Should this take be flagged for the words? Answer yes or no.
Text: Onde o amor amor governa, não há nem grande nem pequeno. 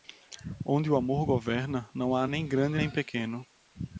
yes